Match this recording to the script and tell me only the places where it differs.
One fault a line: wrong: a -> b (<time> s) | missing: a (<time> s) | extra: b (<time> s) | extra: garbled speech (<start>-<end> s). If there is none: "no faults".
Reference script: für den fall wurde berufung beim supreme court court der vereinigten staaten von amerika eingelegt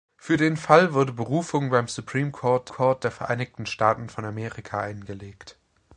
no faults